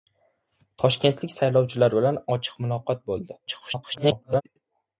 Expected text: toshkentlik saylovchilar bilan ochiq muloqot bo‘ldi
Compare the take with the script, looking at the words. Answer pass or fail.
fail